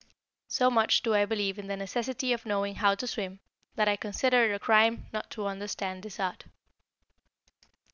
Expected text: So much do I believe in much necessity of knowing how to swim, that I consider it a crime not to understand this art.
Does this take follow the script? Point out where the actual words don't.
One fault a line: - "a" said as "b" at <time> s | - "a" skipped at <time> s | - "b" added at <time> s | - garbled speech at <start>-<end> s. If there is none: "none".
- "much" said as "the" at 1.7 s